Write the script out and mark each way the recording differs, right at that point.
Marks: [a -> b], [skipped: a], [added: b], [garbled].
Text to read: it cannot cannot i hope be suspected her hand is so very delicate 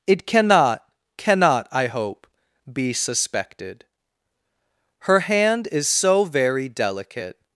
it cannot cannot i hope be suspected her hand is so very delicate